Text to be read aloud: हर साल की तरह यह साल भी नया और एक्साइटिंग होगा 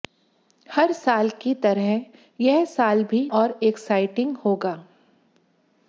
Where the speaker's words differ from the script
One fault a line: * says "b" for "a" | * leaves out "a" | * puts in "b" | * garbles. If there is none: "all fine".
* leaves out "नया"